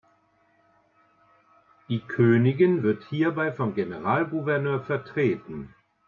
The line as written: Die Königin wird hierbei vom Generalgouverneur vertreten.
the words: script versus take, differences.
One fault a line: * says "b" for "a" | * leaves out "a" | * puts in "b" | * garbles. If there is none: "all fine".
all fine